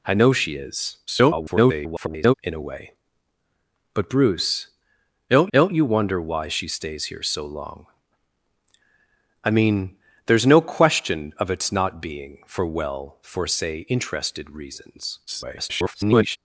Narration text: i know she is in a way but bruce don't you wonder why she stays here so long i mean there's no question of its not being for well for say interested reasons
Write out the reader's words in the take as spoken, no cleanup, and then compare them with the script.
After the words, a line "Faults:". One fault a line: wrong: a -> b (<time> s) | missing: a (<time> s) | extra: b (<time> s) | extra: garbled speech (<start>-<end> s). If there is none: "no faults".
i know she is [garbled] in a way but bruce don't don't you wonder why she stays here so long i mean there's no question of its not being for well for say interested reasons [garbled]
Faults:
extra: garbled speech (1.1-2.3 s)
extra: don't (5.5 s)
extra: garbled speech (15.3-16.4 s)